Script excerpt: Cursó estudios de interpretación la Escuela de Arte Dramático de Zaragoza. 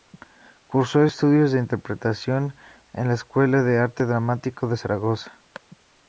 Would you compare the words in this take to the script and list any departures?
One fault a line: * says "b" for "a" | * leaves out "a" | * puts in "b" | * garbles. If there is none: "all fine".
* puts in "en"